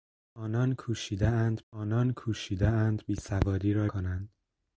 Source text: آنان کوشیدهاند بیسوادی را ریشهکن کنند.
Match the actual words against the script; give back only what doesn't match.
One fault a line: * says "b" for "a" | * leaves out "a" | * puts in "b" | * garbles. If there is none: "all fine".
* puts in "آنان کوشیدهاند"
* leaves out "ریشهکن"